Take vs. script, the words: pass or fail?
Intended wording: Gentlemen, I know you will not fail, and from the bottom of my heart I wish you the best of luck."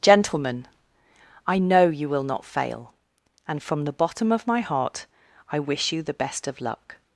pass